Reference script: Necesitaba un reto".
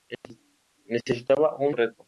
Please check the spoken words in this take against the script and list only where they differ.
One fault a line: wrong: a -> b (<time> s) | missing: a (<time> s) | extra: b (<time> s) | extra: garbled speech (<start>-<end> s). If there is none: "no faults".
no faults